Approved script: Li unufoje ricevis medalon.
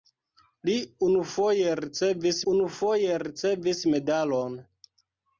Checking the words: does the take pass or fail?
fail